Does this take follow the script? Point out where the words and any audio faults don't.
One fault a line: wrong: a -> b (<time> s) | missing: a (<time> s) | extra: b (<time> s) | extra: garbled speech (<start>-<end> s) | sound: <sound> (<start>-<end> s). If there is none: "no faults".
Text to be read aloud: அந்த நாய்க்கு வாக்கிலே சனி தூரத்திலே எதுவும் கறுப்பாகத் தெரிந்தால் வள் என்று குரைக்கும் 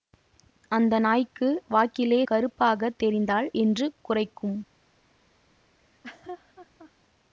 missing: சனி தூரத்திலே எதுவும் (2.2 s)
missing: வள் (3.5 s)
sound: laugh (5.8-6.9 s)